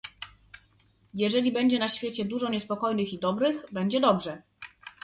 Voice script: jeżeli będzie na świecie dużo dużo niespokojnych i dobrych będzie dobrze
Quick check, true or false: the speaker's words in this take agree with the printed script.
false